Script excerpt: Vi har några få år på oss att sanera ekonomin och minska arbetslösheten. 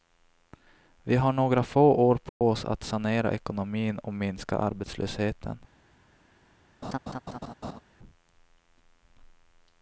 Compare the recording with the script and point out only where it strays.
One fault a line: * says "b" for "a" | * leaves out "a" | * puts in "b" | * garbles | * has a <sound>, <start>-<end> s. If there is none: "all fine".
* has a dropout, 2.3-2.4 s
* has a laugh, 6.8-7.8 s